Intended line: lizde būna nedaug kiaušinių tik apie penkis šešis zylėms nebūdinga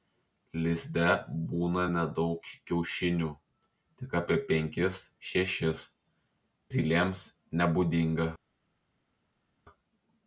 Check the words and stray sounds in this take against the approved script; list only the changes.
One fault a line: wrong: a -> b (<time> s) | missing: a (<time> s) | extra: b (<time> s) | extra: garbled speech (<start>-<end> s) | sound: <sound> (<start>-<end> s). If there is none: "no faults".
no faults